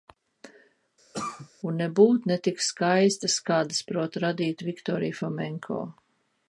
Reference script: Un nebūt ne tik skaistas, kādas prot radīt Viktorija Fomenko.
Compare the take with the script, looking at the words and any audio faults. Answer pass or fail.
fail